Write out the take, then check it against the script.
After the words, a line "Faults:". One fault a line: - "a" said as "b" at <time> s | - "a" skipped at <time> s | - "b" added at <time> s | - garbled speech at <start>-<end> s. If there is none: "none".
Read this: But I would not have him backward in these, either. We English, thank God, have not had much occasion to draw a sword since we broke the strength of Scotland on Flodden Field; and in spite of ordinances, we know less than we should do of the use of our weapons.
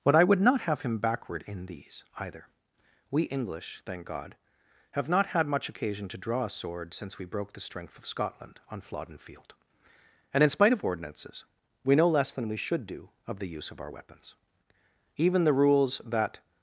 But I would not have him backward in these, either. We English, thank God, have not had much occasion to draw a sword since we broke the strength of Scotland on Flodden Field; and in spite of ordinances, we know less than we should do of the use of our weapons. Even the rules that
Faults:
- "Even the rules that" added at 15.2 s